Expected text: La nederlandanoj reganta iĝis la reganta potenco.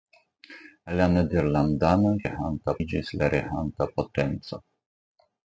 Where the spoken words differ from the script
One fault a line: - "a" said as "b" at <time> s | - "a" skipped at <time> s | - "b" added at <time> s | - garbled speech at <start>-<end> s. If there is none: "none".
none